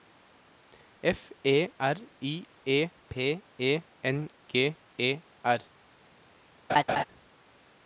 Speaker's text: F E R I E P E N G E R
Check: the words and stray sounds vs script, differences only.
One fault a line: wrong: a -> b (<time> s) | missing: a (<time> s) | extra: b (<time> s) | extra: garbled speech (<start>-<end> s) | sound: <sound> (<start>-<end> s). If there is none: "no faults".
sound: laugh (6.7-7.0 s)